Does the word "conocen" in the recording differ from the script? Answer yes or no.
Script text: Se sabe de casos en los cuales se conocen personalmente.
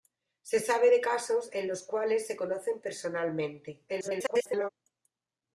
no